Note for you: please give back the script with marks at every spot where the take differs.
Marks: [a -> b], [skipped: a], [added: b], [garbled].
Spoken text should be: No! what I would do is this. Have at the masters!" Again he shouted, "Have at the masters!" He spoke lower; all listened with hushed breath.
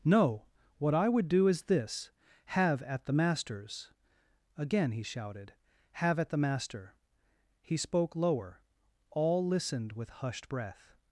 No! what I would do is this. Have at the masters!" Again he shouted, "Have at the [masters!" -> master] He spoke lower; all listened with hushed breath.